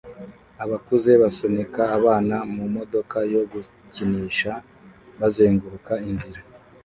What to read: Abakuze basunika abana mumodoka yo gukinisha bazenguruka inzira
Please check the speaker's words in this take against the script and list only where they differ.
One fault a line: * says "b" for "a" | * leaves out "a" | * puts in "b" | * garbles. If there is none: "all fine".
all fine